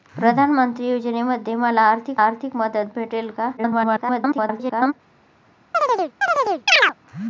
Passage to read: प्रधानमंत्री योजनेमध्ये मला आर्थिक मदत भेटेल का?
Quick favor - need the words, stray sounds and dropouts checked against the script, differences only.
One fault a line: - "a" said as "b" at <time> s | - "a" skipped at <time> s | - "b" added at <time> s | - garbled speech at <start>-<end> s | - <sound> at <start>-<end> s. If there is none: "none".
- "आर्थिक" added at 2.2 s
- garbled speech at 3.6-4.9 s
- chirp at 5.7-6.9 s